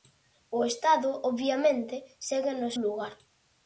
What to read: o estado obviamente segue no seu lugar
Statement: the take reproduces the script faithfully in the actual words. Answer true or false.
false